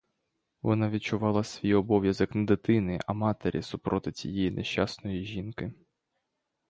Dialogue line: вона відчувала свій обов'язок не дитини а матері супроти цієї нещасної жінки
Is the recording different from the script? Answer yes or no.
no